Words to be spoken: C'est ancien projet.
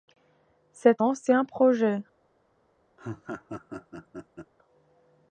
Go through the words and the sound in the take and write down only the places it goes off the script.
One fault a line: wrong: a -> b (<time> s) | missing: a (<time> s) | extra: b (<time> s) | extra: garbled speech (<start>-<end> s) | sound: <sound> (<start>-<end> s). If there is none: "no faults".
sound: laugh (3.0-4.5 s)